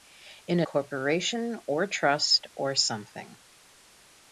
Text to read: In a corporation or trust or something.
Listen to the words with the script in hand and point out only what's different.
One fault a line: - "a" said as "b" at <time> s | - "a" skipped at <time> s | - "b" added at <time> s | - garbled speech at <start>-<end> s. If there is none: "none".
none